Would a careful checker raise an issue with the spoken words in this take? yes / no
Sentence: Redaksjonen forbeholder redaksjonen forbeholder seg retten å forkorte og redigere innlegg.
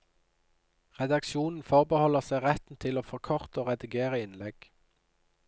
yes